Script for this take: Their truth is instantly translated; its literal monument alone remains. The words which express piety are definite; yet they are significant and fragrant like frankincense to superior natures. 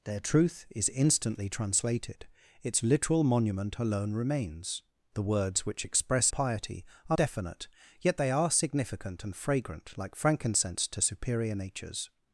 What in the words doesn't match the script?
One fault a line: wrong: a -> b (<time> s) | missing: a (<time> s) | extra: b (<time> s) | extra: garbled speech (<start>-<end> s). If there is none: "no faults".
no faults